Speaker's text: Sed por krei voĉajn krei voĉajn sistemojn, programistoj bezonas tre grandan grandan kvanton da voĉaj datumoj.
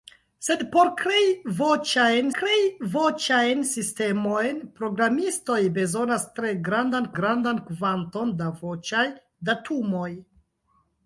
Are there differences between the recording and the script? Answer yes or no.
no